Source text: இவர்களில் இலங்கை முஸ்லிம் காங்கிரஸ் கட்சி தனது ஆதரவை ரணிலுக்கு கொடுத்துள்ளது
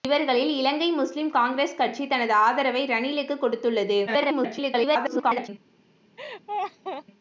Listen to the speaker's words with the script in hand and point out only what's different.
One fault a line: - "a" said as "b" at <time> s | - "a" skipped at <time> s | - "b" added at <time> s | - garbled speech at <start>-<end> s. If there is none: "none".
- garbled speech at 4.1-5.5 s